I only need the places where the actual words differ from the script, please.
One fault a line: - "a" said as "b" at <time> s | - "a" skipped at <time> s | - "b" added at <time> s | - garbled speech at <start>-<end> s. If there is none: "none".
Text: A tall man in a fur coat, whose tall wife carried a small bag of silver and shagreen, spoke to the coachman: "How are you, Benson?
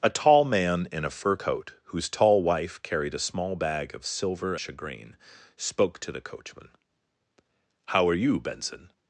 - "and" skipped at 4.5 s